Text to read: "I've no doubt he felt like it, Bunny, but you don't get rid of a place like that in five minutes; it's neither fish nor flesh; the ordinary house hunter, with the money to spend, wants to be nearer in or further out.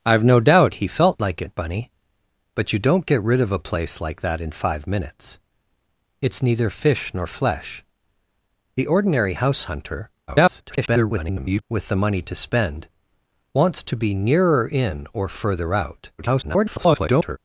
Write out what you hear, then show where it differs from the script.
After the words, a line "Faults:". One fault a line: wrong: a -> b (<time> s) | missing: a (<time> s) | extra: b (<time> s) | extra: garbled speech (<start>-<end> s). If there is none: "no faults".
"I've no doubt he felt like it, Bunny, but you don't get rid of a place like that in five minutes; it's neither fish nor flesh; the ordinary house hunter, [garbled] with the money to spend, wants to be nearer in or further out. [garbled]
Faults:
extra: garbled speech (10.3-11.6 s)
extra: garbled speech (16.2-17.4 s)